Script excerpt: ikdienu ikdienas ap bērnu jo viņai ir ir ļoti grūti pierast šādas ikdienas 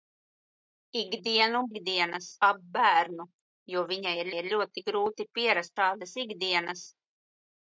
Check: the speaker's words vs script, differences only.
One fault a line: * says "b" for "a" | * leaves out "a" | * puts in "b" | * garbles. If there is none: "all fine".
all fine